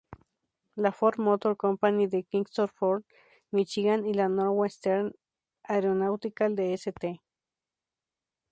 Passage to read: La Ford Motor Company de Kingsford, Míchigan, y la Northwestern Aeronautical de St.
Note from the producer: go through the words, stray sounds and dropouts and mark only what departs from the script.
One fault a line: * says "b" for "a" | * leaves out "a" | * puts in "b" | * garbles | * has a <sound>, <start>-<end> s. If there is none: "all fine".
all fine